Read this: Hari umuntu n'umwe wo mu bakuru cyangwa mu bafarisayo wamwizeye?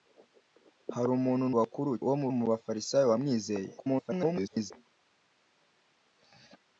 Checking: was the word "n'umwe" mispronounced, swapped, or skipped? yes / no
yes